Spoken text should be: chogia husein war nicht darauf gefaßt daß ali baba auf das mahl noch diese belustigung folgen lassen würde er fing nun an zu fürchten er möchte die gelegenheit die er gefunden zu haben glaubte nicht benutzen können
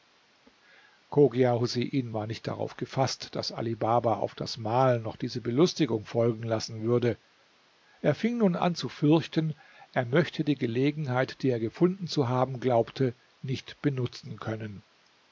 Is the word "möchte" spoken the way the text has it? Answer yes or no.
yes